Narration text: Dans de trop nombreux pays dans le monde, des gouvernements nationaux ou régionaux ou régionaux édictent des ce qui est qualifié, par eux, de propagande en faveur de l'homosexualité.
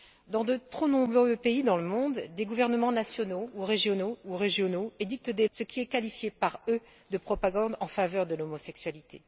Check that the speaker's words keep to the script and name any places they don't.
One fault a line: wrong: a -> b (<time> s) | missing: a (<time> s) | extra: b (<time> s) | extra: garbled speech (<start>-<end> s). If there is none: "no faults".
no faults